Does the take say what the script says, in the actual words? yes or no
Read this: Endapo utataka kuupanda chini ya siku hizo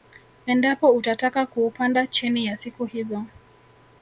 yes